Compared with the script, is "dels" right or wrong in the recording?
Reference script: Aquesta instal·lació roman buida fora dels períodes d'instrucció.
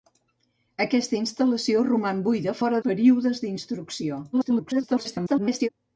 wrong